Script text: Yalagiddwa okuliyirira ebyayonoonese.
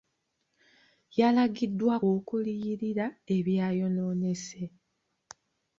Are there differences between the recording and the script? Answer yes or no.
no